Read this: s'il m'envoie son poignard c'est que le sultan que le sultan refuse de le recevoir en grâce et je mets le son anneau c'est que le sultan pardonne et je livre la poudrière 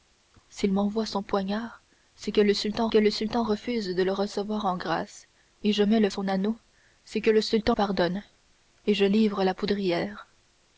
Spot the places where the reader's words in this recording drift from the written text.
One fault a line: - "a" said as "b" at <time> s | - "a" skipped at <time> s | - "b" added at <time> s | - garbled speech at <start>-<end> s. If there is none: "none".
none